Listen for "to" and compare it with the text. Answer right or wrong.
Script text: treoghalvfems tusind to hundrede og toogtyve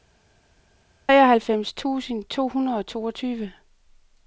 right